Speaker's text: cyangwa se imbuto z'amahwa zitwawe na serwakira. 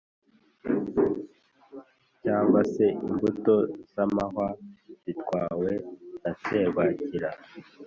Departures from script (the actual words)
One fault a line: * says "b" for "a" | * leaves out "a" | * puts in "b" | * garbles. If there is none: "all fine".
all fine